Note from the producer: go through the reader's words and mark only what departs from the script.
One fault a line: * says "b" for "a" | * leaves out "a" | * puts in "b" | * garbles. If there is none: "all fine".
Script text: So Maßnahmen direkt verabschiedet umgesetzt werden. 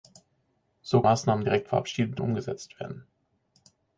all fine